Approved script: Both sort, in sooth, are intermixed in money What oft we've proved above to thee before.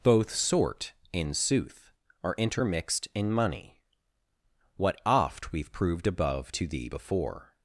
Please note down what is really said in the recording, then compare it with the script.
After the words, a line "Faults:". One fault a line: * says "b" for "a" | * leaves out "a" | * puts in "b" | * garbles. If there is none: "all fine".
Both sort, in sooth, are intermixed in money What oft we've proved above to thee before.
Faults:
all fine